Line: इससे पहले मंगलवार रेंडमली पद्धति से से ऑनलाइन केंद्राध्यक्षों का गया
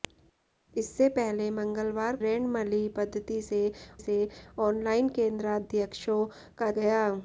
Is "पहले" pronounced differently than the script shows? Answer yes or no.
no